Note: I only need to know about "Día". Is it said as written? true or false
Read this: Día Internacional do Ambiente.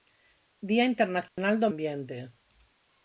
true